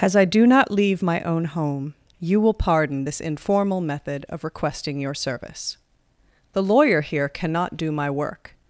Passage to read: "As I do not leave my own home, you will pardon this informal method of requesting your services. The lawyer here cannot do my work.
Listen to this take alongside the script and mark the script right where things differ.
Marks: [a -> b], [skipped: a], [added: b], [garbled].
"As I do not leave my own home, you will pardon this informal method of requesting your [services. -> service] The lawyer here cannot do my work.